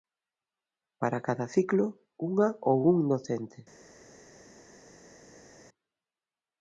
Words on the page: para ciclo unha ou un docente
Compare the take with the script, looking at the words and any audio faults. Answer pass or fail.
fail